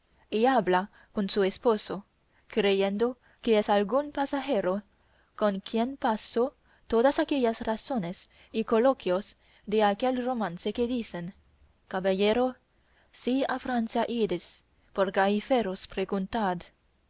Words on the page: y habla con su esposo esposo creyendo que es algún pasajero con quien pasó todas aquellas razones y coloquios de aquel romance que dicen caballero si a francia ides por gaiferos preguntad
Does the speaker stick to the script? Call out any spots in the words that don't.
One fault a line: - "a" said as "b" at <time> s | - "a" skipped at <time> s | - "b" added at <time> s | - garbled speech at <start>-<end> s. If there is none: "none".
- "esposo" skipped at 2.1 s